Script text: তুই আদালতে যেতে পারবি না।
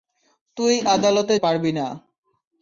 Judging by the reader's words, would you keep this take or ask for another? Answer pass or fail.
fail